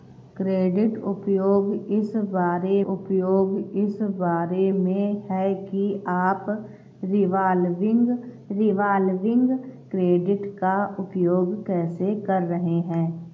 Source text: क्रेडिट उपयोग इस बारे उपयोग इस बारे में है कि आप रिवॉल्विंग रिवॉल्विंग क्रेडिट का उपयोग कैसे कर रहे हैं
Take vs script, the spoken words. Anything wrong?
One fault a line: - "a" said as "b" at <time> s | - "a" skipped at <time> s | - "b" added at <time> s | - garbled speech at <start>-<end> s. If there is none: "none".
none